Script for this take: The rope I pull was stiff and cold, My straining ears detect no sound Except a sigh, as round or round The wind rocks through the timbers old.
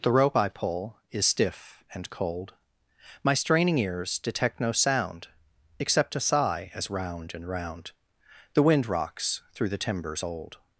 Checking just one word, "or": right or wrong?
wrong